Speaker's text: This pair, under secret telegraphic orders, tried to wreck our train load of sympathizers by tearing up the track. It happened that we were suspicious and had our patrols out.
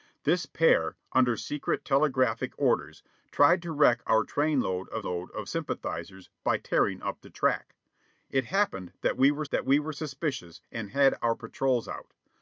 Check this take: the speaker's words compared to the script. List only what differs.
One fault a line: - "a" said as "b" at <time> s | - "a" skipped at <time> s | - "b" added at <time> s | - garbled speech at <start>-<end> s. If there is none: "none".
- "load of" added at 5.0 s
- "that we were" added at 9.5 s